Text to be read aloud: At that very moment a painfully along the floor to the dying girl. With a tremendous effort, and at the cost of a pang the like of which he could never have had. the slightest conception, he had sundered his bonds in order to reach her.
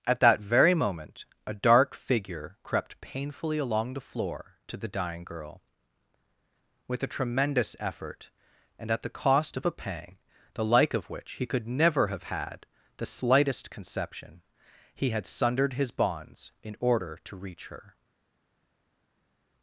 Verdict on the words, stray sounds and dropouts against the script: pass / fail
fail